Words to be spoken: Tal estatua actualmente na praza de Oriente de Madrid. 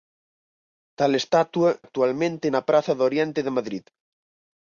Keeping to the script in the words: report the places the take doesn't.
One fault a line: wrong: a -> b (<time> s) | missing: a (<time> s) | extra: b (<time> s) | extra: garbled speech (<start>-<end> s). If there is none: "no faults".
no faults